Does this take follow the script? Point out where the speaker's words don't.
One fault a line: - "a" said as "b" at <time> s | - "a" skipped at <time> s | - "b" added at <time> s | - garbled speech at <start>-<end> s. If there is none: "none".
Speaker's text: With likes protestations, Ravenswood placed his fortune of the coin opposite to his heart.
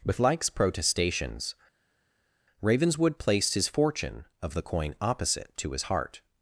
none